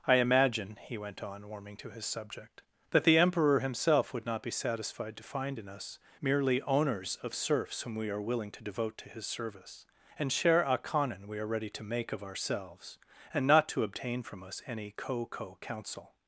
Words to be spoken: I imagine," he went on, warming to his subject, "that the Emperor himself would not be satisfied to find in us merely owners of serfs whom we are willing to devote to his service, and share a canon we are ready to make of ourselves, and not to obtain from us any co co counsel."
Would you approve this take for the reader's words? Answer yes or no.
yes